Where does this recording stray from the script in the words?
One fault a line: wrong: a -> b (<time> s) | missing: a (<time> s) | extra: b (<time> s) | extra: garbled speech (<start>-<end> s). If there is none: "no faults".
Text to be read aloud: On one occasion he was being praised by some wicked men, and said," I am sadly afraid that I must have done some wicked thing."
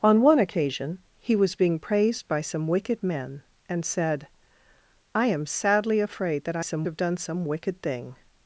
wrong: must -> some (6.6 s)